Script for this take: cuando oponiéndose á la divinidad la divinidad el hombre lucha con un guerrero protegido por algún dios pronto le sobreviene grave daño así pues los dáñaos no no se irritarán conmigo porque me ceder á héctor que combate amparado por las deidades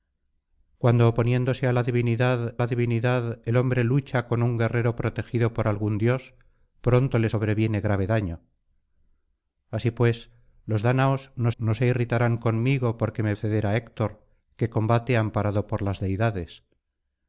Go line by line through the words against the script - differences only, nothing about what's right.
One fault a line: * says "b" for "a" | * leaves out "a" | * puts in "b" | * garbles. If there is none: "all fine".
all fine